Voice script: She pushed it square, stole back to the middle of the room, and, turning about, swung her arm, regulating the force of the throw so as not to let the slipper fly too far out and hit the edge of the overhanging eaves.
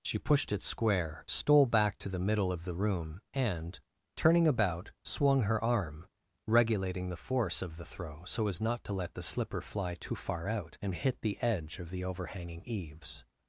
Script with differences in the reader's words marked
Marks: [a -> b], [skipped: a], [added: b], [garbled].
She pushed it square, stole back to the middle of the room, and, turning about, swung her arm, regulating the force of the throw so as not to let the slipper fly too far out and hit the edge of the overhanging eaves.